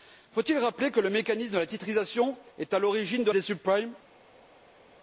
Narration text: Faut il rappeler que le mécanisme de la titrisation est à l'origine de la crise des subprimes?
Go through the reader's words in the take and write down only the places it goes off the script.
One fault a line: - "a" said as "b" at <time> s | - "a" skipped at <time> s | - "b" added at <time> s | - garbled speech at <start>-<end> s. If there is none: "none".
- "la crise" skipped at 3.3 s